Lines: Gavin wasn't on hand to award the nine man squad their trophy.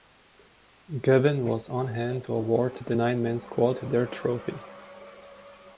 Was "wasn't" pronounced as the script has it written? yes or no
no